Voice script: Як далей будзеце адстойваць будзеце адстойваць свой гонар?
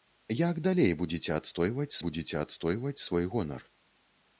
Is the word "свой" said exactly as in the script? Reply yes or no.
yes